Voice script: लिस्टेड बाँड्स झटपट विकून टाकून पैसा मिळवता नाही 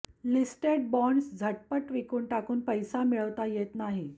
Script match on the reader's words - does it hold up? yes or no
no